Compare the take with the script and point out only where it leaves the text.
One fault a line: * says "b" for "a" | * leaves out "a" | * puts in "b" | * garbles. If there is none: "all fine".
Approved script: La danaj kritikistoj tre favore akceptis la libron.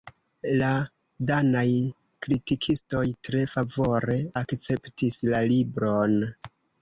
all fine